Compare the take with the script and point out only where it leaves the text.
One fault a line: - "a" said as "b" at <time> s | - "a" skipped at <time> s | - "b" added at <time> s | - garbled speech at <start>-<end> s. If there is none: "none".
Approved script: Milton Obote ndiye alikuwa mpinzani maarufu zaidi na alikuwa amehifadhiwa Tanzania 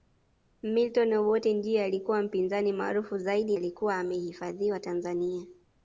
- "na" skipped at 3.6 s